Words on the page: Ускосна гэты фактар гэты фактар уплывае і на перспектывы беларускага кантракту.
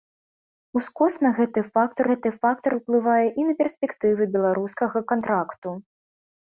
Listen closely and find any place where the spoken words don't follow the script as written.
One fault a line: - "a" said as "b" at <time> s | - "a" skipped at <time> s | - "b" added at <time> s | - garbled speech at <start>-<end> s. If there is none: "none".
none